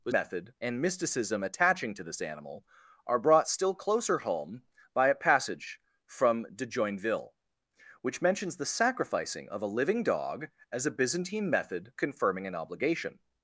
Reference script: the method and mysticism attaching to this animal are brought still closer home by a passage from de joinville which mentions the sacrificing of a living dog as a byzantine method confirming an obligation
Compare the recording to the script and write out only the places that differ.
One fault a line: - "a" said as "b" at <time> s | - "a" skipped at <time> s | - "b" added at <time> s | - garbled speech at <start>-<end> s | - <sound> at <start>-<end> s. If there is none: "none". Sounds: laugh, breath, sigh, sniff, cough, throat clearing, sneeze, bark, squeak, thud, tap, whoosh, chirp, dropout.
none